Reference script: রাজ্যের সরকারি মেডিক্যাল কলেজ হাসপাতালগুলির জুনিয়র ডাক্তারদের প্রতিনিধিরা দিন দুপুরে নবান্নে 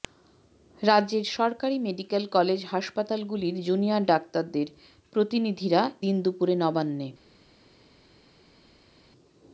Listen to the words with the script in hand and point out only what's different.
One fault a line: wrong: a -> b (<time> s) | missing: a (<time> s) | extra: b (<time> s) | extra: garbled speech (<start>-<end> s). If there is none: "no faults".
no faults